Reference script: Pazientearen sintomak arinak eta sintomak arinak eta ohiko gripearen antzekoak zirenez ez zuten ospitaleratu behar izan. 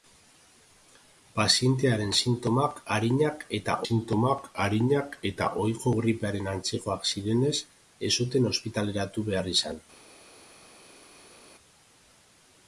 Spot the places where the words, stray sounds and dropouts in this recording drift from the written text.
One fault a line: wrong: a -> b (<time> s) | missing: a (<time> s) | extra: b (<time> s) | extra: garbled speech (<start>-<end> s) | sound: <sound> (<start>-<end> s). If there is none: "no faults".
no faults